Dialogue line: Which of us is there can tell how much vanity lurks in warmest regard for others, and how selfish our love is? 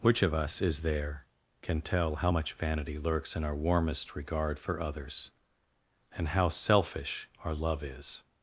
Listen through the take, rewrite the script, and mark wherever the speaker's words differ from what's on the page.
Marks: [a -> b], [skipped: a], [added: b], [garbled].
Which of us is there can tell how much vanity lurks in [added: our] warmest regard for others, and how selfish our love is?